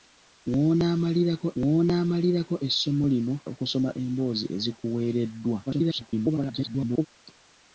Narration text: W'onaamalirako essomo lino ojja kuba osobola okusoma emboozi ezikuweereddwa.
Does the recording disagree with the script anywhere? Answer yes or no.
yes